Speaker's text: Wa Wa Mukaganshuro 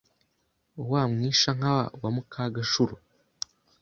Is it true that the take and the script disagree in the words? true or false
true